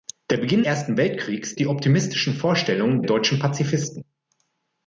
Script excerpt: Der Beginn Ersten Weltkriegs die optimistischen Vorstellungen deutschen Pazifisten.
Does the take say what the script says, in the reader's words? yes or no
yes